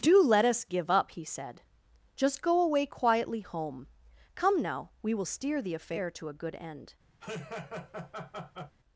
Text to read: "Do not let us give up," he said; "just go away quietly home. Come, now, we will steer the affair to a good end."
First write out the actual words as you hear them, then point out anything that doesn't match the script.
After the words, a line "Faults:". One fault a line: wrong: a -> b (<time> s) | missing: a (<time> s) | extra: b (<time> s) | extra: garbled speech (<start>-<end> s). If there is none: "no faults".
"Do let us give up," he said; "just go away quietly home. Come, now, we will steer the affair to a good end."
Faults:
missing: not (0.2 s)